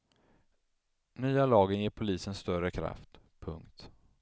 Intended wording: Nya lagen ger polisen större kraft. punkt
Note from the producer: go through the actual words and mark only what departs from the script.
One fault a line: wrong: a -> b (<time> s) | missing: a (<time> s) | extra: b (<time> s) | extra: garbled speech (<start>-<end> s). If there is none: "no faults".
no faults